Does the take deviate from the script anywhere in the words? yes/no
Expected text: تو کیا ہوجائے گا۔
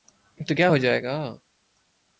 no